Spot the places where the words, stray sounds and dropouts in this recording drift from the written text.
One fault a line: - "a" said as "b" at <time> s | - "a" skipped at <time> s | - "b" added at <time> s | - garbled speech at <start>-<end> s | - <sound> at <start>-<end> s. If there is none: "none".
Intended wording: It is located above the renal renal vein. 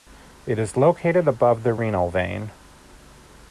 - "renal" skipped at 2.1 s